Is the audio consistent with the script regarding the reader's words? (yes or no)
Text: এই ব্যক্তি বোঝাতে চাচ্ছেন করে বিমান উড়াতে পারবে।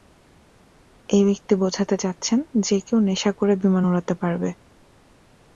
no